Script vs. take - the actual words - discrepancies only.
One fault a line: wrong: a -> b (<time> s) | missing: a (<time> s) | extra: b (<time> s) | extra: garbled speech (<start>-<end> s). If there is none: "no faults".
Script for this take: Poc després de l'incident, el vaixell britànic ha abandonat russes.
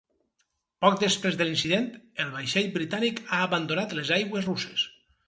extra: les aigües (4.0 s)